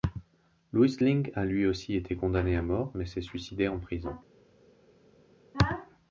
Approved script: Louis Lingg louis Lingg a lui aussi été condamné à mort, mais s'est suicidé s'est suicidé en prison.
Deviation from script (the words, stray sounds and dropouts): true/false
true